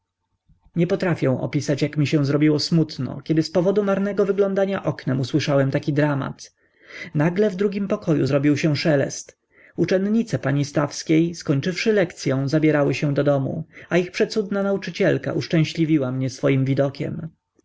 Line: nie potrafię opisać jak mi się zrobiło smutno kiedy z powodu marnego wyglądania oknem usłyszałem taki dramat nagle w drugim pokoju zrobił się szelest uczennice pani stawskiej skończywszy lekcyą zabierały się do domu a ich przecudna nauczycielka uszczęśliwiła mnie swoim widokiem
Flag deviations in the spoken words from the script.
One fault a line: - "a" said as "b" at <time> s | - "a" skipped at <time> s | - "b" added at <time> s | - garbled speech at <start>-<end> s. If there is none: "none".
none